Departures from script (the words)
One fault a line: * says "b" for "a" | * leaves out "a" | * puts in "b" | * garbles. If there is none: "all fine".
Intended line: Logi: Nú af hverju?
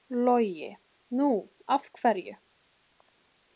all fine